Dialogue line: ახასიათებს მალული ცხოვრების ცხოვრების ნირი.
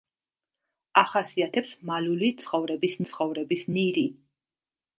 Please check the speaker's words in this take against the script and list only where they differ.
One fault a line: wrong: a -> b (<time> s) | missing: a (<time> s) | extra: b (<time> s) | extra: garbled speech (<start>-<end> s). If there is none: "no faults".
no faults